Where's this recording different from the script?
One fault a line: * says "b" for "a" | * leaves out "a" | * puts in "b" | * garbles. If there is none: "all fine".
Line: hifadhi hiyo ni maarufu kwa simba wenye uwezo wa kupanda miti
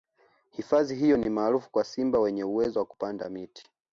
all fine